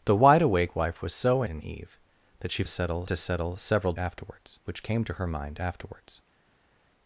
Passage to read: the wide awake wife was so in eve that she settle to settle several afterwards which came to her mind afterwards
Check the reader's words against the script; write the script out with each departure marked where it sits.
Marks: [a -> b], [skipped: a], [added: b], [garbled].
the wide awake wife was so in eve that she settle to settle several afterwards which came to her mind afterwards